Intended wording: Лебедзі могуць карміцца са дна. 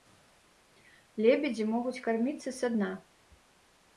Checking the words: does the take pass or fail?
pass